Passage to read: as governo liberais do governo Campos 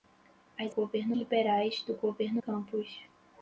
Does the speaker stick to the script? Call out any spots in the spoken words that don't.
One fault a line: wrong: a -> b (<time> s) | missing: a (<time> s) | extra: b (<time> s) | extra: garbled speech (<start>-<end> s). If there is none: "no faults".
no faults